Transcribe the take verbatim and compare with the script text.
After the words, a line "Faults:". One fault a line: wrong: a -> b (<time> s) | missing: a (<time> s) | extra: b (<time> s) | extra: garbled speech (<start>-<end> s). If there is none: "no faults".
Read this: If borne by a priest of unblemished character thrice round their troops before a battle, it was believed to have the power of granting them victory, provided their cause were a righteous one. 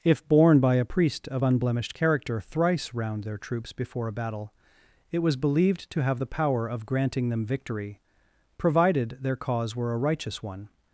If borne by a priest of unblemished character thrice round their troops before a battle, it was believed to have the power of granting them victory, provided their cause were a righteous one.
Faults:
no faults